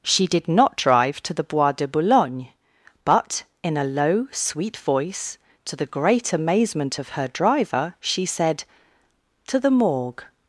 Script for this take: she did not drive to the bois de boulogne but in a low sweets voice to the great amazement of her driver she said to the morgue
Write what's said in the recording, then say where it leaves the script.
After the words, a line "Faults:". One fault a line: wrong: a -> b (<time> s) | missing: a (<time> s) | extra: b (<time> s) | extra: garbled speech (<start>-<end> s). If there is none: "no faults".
she did not drive to the bois de boulogne but in a low sweet voice to the great amazement of her driver she said to the morgue
Faults:
wrong: sweets -> sweet (4.3 s)